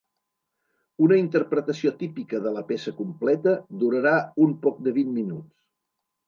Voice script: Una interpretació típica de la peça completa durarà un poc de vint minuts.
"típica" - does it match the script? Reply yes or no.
yes